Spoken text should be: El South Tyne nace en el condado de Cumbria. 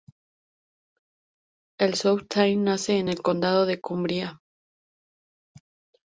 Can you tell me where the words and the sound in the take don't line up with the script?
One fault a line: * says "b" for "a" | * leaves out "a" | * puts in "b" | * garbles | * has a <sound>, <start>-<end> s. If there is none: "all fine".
all fine